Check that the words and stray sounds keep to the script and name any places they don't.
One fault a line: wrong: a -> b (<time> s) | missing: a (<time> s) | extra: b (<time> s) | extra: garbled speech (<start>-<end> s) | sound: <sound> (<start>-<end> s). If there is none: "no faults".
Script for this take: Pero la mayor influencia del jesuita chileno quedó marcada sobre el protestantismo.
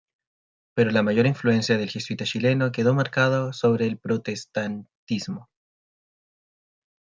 no faults